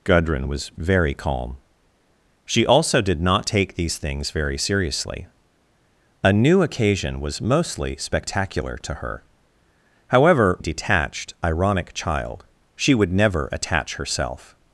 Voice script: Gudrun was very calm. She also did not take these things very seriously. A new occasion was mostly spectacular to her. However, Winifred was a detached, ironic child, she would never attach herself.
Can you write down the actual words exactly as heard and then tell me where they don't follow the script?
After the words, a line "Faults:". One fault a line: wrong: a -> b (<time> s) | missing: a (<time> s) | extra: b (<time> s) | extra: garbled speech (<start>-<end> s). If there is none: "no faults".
Gudrun was very calm. She also did not take these things very seriously. A new occasion was mostly spectacular to her. However, Detached, ironic child, she would never attach herself.
Faults:
missing: Winifred was a (10.6 s)